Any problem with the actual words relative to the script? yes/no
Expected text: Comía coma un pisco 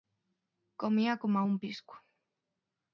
no